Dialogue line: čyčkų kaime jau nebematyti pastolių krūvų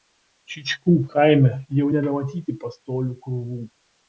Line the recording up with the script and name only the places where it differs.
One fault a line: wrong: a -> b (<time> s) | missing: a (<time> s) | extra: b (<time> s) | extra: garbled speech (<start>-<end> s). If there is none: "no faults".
no faults